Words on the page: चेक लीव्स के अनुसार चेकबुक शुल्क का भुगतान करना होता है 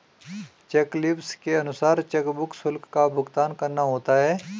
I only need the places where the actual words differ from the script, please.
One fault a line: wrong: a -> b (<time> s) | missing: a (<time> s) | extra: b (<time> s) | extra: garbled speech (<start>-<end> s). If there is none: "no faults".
no faults